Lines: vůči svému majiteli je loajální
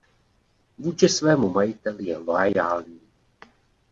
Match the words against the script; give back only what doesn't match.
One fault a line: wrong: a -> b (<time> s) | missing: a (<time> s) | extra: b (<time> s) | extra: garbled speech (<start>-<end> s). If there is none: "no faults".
no faults